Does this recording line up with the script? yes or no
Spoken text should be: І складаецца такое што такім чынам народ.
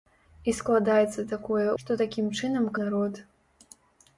yes